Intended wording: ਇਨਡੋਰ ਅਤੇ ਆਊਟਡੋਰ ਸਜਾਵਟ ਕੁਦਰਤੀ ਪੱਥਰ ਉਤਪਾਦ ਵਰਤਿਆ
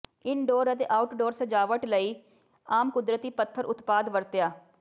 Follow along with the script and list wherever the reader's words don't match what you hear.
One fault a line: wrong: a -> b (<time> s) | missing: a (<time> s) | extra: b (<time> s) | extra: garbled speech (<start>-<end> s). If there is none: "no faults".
extra: ਲਈ ਆਮ (1.9 s)